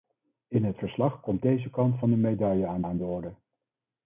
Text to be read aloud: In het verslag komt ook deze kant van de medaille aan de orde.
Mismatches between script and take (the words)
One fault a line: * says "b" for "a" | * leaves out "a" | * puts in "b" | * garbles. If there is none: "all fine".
* leaves out "ook"
* puts in "aan"